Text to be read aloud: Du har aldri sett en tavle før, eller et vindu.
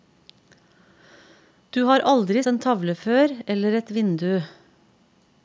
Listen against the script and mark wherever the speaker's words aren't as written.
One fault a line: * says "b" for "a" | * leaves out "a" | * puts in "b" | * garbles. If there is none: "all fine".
* leaves out "sett"